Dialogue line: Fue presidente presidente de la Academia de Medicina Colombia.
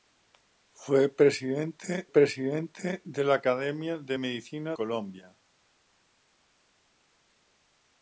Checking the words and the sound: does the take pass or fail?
pass